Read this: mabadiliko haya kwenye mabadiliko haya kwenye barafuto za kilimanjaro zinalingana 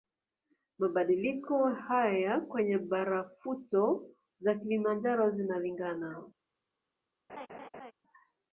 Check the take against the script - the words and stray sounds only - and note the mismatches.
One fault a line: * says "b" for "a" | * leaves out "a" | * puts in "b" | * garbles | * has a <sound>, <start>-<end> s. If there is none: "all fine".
* leaves out "mabadiliko haya kwenye"
* has a laugh, 7.3-7.9 s